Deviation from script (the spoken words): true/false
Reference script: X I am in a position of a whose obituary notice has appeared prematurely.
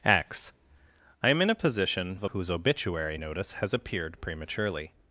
false